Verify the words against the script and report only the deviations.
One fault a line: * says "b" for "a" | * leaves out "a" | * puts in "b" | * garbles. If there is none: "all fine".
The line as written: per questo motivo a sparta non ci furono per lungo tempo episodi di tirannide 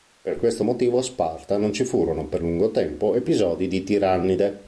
all fine